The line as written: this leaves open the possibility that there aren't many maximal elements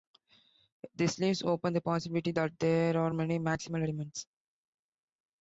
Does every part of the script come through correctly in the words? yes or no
no